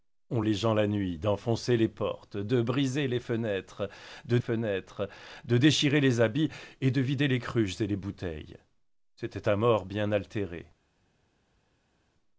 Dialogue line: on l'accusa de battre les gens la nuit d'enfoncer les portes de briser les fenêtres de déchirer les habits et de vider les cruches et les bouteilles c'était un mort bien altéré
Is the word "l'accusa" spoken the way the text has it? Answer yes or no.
no